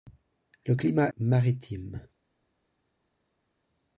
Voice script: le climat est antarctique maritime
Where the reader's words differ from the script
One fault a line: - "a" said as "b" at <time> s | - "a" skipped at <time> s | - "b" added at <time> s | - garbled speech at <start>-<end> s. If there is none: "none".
- "est antarctique" skipped at 1.1 s